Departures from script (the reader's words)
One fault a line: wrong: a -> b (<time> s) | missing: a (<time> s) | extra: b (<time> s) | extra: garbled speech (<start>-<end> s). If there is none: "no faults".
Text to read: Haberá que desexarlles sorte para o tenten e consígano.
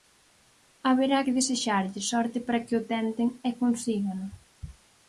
extra: que (2.6 s)